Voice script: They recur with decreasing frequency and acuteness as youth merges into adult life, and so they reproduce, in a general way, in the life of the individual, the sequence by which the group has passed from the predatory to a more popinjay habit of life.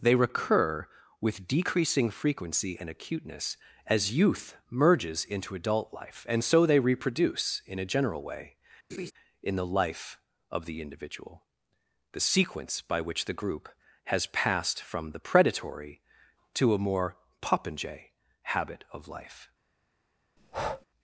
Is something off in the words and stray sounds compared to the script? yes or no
yes